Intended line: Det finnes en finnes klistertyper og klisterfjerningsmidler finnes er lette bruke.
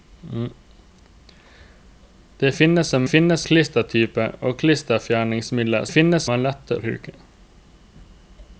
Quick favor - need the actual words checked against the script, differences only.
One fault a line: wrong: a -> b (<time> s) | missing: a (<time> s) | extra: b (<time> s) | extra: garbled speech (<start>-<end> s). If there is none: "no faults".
no faults